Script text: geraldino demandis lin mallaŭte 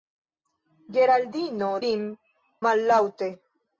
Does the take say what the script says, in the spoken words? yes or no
no